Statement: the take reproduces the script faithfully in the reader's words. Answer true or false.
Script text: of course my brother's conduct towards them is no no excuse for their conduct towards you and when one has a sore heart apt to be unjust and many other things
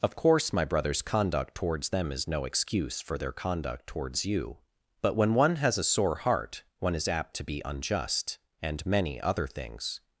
false